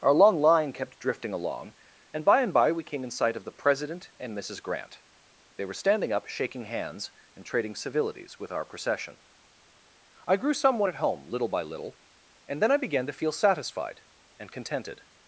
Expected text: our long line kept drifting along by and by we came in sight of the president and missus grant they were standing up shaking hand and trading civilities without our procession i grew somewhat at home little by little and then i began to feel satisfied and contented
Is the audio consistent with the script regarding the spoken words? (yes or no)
no